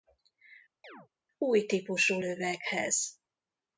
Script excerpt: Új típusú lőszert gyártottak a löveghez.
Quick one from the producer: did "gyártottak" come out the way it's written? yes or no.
no